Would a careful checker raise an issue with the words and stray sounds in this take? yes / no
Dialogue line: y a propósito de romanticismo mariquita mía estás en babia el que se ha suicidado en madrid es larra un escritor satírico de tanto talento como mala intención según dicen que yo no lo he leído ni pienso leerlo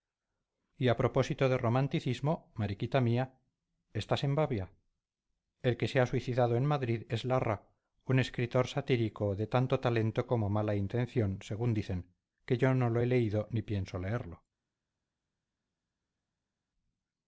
no